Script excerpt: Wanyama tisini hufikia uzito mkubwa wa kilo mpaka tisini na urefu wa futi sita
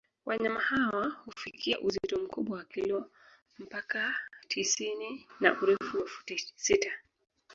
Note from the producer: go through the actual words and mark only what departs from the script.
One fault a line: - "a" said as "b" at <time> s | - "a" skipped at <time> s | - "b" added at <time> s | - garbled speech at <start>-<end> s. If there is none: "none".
- "tisini" said as "hawa" at 0.6 s